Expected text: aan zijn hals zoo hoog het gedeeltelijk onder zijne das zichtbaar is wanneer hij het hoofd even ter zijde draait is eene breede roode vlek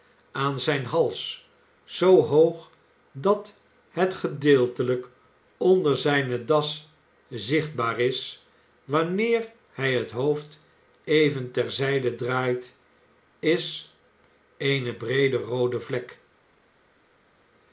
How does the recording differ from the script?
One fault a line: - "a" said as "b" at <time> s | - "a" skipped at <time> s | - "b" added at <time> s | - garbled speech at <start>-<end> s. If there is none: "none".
- "dat" added at 3.1 s